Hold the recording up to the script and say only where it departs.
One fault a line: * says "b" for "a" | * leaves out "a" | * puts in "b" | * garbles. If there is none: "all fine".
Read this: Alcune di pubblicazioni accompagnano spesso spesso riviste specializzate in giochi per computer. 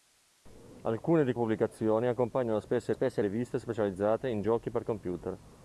all fine